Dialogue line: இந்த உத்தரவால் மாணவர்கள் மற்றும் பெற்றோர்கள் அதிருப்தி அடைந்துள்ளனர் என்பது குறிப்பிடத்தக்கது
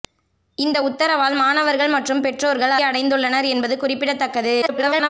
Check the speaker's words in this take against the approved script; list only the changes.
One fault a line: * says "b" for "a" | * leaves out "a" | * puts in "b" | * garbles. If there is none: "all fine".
* leaves out "அதிருப்தி"
* garbles